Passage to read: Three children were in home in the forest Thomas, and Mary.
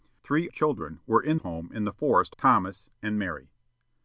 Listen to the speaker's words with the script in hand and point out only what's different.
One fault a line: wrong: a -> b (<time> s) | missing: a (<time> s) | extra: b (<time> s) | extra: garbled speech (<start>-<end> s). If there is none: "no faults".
no faults